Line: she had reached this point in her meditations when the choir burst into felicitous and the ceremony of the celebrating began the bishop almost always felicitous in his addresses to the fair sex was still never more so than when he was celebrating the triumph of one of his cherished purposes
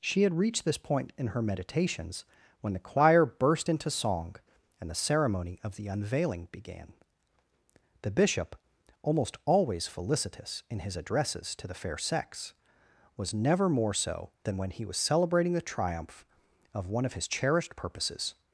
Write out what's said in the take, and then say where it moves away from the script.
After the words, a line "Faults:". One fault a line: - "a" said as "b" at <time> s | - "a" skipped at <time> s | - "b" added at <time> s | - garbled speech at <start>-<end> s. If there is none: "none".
she had reached this point in her meditations when the choir burst into song and the ceremony of the unveiling began the bishop almost always felicitous in his addresses to the fair sex was never more so than when he was celebrating the triumph of one of his cherished purposes
Faults:
- "felicitous" said as "song" at 3.9 s
- "celebrating" said as "unveiling" at 5.9 s
- "still" skipped at 13.3 s